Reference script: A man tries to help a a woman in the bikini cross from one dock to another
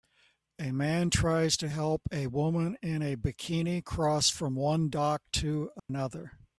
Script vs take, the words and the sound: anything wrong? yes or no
yes